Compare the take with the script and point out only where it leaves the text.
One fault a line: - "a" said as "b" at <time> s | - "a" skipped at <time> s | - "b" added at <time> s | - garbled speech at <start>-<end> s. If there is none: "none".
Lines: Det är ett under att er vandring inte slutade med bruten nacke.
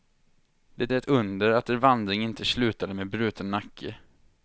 none